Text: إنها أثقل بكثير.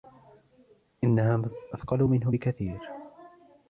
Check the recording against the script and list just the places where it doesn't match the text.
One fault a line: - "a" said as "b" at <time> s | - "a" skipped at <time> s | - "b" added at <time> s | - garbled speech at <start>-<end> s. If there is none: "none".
- "منه" added at 2.0 s